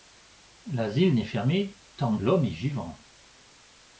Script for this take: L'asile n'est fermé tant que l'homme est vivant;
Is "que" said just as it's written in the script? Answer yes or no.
no